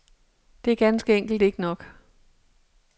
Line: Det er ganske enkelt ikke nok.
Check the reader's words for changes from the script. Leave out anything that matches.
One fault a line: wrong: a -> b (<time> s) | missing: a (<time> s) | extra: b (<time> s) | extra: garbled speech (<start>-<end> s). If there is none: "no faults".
no faults